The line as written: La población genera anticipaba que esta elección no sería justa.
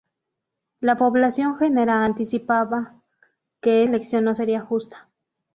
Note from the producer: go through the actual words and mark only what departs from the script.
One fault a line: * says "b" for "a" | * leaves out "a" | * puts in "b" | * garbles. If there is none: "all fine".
* leaves out "esta"